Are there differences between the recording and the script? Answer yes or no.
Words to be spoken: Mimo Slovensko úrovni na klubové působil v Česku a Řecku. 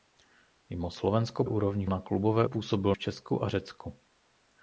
no